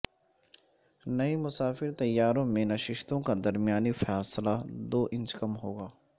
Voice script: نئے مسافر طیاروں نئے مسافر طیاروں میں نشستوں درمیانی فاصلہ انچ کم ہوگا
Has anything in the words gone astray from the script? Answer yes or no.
yes